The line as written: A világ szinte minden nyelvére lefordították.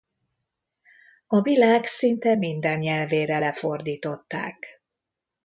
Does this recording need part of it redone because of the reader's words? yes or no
no